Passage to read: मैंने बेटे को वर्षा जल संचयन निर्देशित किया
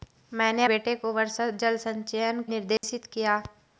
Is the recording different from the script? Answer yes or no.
no